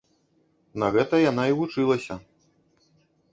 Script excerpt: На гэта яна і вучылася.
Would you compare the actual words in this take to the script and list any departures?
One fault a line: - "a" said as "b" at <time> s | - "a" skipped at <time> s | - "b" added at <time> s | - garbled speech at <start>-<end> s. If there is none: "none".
none